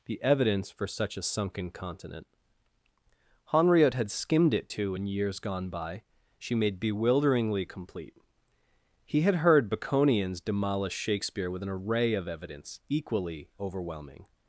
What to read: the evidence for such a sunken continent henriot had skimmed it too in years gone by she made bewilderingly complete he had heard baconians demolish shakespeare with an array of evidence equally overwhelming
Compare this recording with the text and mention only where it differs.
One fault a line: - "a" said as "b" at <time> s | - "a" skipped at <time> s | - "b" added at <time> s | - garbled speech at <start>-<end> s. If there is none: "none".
none